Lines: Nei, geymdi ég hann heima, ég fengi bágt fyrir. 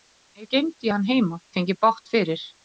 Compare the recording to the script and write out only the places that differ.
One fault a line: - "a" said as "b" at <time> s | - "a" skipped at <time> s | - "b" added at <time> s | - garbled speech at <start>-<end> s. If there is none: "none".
none